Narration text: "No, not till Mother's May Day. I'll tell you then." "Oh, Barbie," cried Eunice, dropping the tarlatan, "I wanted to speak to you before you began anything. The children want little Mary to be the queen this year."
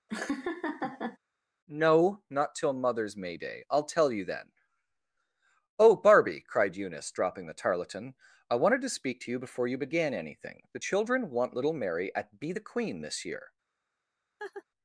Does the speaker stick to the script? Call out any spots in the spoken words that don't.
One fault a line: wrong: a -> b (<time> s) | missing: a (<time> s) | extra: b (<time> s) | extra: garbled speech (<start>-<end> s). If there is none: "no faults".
wrong: to -> at (12.1 s)